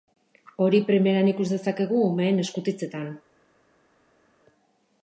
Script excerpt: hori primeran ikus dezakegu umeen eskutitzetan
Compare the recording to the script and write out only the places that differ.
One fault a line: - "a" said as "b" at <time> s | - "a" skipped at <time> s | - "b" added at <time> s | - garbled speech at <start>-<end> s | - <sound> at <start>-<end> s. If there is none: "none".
none